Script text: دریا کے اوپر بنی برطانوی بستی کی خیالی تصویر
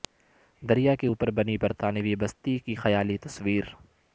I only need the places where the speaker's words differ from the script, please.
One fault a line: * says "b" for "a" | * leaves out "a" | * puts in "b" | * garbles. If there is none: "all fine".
all fine